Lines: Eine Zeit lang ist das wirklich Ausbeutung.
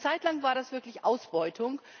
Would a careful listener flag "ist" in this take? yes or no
yes